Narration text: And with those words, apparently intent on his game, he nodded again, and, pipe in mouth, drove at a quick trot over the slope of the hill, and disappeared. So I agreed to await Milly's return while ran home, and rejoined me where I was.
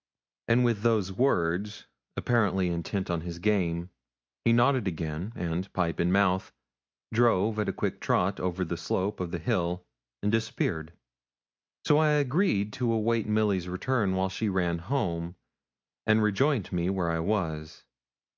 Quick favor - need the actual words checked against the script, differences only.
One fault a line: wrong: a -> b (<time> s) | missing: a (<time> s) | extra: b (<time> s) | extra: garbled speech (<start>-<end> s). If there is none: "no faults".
extra: she (14.3 s)